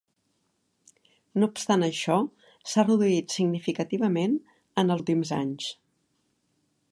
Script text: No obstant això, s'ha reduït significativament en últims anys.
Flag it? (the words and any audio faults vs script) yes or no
no